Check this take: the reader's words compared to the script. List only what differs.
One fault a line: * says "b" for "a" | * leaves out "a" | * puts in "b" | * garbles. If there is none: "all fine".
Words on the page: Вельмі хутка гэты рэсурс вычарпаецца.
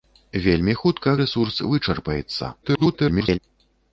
* leaves out "гэты"
* garbles